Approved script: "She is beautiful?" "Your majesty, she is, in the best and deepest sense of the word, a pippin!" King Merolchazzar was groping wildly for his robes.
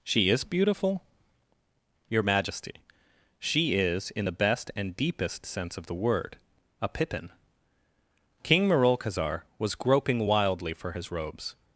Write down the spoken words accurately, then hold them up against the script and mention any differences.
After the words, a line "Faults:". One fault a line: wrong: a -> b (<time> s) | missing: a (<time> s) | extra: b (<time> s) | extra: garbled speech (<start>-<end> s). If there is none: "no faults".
"She is beautiful?" "Your majesty, she is, in the best and deepest sense of the word, a pippin!" King Merolchazzar was groping wildly for his robes.
Faults:
no faults